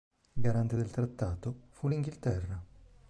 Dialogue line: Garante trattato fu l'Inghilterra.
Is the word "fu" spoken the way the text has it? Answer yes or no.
yes